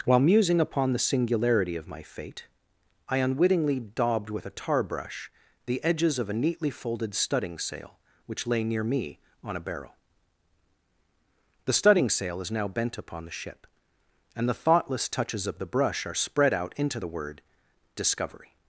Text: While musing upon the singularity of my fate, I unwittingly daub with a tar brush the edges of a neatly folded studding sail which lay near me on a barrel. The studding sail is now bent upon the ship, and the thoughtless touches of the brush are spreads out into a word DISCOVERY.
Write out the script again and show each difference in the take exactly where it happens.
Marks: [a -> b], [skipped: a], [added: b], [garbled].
While musing upon the singularity of my fate, I unwittingly [daub -> daubed] with a tar brush the edges of a neatly folded studding sail which lay near me on a barrel. The studding sail is now bent upon the ship, and the thoughtless touches of the brush are [spreads -> spread] out into [a -> the] word DISCOVERY.